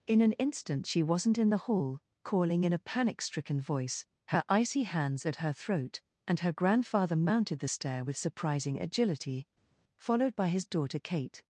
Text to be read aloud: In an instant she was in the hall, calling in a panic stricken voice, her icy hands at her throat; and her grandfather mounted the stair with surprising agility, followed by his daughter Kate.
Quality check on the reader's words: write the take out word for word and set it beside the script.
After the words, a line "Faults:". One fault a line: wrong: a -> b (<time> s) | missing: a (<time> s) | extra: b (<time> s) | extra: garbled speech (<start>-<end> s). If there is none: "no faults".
In an instant she wasn't in the hall, calling in a panic stricken voice, her icy hands at her throat; and her grandfather mounted the stair with surprising agility, followed by his daughter Kate.
Faults:
wrong: was -> wasn't (1.0 s)